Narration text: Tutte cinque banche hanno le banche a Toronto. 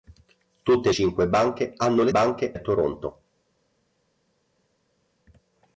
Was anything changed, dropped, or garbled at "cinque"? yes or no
no